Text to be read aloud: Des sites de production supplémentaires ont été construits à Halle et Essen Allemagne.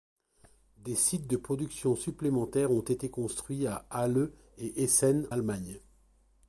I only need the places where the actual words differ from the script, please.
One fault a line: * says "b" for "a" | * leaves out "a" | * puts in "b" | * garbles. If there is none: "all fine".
all fine